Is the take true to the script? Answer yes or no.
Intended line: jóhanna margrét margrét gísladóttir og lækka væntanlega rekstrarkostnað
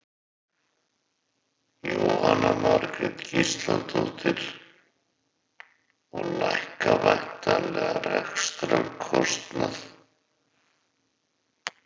no